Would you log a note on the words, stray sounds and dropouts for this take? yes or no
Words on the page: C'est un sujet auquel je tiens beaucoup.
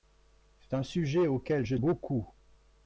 yes